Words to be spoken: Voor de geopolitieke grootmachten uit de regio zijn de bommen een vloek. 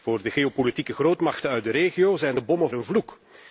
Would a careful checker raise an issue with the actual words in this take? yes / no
no